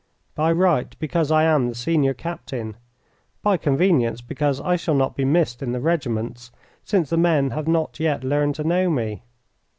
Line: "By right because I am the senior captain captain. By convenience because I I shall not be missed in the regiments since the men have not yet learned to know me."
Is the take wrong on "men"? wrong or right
right